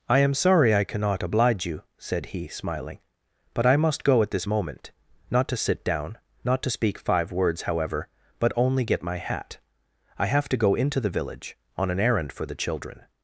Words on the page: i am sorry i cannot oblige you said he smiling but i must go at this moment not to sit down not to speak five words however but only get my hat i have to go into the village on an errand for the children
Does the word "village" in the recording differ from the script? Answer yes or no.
no